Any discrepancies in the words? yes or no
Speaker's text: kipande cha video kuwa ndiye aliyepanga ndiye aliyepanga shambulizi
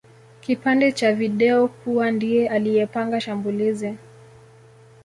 yes